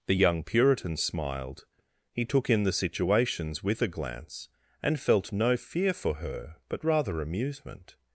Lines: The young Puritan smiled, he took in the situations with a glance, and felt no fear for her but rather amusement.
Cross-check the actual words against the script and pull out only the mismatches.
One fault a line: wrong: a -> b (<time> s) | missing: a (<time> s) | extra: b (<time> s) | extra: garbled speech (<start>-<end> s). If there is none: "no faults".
no faults